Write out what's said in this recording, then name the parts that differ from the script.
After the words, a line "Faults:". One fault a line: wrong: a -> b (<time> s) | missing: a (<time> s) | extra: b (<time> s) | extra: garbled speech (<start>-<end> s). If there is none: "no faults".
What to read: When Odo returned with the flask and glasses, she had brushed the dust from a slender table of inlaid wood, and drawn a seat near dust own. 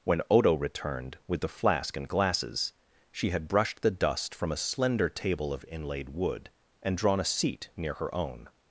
When Odo returned with the flask and glasses, she had brushed the dust from a slender table of inlaid wood, and drawn a seat near her own.
Faults:
wrong: dust -> her (8.0 s)